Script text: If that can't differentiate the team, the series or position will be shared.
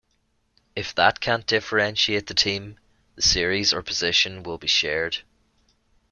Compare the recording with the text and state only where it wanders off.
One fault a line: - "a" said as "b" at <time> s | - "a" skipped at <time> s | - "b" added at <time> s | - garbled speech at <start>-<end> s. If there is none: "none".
none